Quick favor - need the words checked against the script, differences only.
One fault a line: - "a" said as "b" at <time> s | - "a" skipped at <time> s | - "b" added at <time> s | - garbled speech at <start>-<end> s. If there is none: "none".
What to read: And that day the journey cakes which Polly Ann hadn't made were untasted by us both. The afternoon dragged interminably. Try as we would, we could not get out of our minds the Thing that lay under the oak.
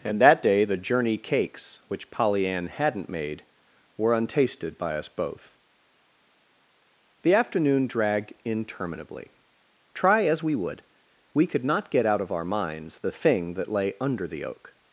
none